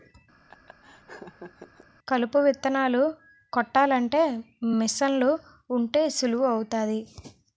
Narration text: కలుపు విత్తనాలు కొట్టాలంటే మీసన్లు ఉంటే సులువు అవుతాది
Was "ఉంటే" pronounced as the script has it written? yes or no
yes